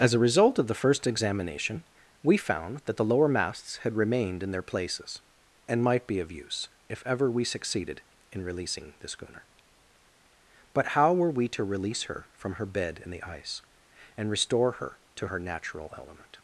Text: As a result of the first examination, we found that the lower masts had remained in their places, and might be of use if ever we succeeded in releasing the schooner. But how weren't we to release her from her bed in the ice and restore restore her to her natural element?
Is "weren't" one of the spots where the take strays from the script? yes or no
yes